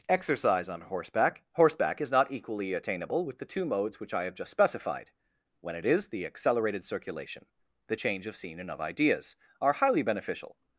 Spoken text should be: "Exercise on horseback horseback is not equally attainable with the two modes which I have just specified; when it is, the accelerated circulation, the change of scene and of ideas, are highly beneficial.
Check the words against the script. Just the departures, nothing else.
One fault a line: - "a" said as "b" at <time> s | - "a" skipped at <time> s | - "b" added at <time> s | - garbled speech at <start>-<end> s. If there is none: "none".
none